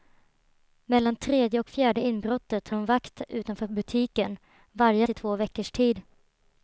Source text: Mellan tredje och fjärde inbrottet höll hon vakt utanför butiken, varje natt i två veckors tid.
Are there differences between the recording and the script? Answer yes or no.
yes